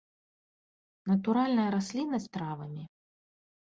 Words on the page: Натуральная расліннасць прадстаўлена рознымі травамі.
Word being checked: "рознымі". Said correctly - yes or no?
no